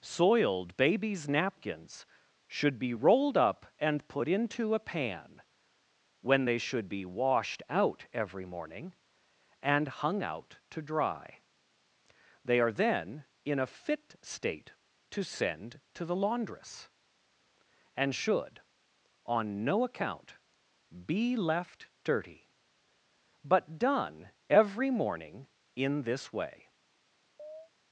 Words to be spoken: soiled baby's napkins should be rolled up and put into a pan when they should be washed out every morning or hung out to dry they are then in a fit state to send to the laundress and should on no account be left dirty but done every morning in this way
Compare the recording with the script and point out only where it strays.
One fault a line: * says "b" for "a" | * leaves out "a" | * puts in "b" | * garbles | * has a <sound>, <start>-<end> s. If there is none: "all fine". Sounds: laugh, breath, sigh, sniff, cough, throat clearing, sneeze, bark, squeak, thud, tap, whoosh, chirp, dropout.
* says "and" for "or"
* has a chirp, 27.4-27.7 s